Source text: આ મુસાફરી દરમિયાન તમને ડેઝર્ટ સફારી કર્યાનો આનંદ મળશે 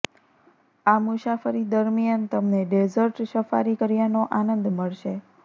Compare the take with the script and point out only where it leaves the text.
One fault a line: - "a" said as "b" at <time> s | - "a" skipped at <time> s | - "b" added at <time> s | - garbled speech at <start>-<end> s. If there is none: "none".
none